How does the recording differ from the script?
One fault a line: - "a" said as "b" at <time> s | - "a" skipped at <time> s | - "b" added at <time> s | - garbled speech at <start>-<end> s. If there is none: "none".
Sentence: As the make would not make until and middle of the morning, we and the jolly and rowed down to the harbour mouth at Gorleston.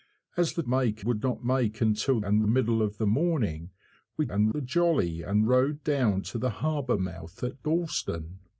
none